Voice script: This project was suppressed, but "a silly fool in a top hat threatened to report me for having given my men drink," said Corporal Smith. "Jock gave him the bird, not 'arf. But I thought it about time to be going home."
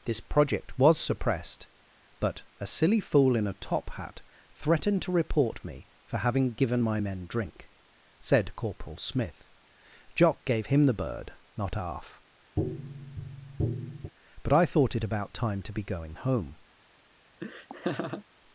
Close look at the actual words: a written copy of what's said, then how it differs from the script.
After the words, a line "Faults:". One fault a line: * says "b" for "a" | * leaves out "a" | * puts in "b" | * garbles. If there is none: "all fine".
This project was suppressed, but "a silly fool in a top hat threatened to report me for having given my men drink," said Corporal Smith. "Jock gave him the bird, not 'arf. But I thought it about time to be going home."
Faults:
all fine